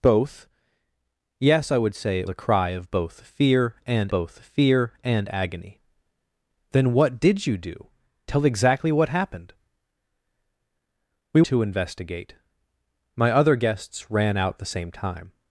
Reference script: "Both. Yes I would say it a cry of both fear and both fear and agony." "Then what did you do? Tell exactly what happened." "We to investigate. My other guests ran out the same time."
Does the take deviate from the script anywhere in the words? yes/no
no